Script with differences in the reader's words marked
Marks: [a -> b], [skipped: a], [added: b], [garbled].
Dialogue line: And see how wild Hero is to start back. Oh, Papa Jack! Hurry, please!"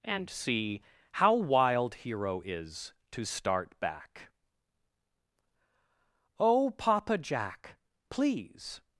And see how wild Hero is to start back. Oh, Papa Jack! [skipped: Hurry,] please!"